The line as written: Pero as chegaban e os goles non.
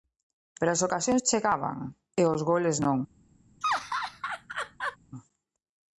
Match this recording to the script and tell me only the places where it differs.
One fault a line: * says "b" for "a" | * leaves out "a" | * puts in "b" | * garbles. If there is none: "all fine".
* puts in "ocasións"